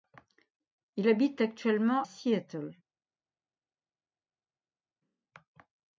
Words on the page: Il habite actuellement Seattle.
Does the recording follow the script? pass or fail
pass